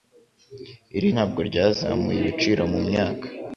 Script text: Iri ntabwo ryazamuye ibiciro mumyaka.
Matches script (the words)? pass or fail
pass